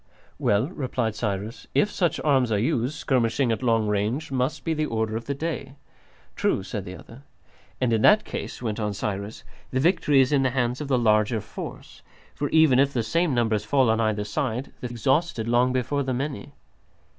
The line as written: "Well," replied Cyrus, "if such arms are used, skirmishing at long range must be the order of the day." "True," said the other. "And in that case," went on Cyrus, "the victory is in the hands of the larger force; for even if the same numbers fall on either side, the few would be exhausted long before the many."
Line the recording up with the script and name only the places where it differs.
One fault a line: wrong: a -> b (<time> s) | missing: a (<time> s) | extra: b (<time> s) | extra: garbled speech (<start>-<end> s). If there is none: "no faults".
missing: few would be (14.9 s)